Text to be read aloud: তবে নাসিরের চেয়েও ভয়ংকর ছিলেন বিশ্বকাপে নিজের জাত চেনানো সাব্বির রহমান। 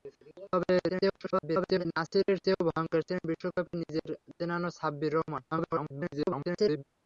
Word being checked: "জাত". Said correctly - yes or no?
no